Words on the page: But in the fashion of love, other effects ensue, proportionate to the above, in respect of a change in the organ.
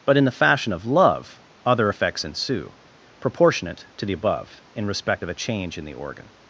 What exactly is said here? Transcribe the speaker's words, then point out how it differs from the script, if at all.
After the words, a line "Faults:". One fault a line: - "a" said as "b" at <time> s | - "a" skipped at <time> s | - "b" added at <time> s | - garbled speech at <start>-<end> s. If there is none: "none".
But in the fashion of love, other effects ensue, proportionate to the above, in respect of a change in the organ.
Faults:
none